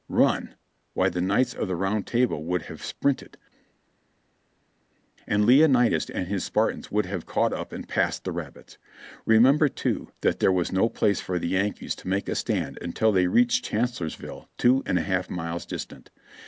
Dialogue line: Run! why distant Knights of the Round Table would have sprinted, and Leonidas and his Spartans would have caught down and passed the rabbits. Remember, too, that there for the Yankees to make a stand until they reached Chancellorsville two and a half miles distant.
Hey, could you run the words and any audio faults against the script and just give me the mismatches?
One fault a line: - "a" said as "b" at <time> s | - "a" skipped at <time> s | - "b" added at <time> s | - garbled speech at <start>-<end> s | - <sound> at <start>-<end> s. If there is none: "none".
- "distant" said as "the" at 1.1 s
- "down" said as "up" at 7.5 s
- "was no place" added at 10.5 s